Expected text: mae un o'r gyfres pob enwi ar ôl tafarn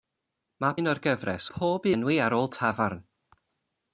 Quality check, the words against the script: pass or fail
pass